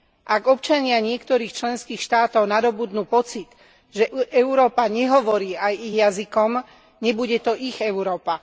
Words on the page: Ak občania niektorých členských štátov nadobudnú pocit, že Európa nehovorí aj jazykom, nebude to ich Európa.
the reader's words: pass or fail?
fail